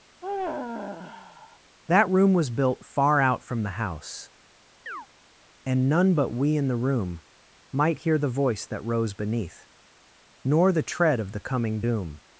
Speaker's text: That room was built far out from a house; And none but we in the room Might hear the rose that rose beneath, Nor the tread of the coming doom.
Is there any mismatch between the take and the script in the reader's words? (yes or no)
yes